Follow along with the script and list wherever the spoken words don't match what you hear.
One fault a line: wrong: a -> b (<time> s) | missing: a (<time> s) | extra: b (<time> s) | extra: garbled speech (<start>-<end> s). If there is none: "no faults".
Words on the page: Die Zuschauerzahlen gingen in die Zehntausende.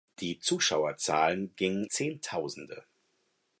missing: in die (1.9 s)